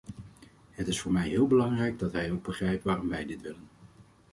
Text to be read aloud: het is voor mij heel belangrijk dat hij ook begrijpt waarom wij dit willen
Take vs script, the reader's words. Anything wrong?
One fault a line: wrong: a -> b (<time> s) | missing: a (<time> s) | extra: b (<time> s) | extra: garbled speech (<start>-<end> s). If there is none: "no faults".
no faults